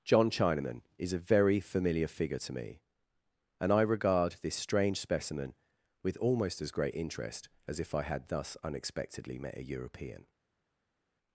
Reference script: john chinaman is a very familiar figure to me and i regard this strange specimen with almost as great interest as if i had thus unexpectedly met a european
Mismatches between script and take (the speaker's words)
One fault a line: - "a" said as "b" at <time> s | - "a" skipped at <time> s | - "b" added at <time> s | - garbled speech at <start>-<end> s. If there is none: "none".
none